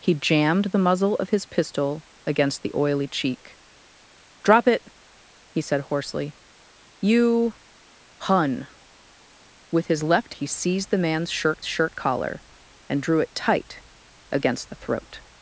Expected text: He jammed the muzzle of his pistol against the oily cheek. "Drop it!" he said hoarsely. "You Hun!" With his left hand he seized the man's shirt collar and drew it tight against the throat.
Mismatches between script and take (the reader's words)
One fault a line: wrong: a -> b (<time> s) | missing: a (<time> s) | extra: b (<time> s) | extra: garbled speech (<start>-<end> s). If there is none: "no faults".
missing: hand (10.3 s)
extra: shirt (11.6 s)